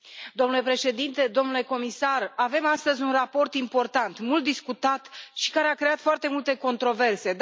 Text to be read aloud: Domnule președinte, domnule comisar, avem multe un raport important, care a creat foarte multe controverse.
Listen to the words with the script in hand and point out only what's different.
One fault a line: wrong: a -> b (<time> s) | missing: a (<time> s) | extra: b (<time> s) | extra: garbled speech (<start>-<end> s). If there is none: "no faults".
wrong: multe -> astăzi (2.6 s)
extra: mult discutat și (4.2 s)